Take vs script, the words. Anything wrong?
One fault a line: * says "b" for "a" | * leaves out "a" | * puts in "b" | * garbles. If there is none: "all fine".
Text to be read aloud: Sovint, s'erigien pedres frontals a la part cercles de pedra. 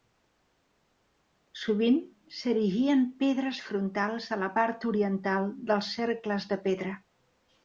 * puts in "oriental dels"